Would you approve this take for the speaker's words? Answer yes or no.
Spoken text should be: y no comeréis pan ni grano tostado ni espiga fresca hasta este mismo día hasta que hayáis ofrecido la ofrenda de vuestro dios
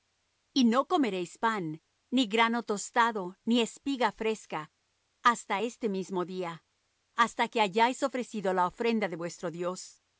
yes